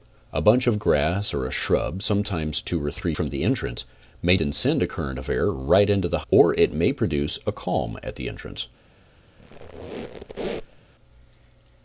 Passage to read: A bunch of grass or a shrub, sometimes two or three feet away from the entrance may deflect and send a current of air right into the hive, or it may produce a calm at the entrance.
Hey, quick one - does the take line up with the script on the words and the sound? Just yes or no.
no